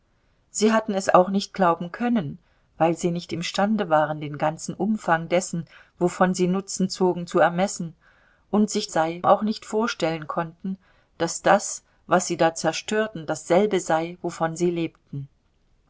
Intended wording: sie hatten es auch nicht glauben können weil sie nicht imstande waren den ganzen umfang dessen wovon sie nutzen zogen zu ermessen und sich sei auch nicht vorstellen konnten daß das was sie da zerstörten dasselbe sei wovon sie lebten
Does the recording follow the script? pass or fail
pass